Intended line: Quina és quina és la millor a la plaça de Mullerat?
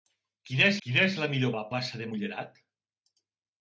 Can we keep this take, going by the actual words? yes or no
yes